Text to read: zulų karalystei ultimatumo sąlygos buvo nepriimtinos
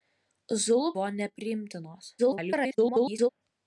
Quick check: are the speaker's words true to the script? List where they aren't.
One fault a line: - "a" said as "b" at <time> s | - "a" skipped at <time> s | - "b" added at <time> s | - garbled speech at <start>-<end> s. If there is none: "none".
- "karalystei ultimatumo sąlygos" skipped at 0.9 s
- garbled speech at 2.2-3.3 s